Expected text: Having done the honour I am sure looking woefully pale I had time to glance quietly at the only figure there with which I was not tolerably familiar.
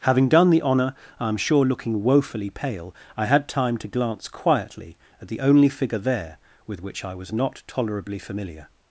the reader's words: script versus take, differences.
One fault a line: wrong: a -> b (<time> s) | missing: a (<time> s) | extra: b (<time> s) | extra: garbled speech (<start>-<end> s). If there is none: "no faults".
no faults